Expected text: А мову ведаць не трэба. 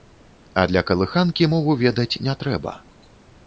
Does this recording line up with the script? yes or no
no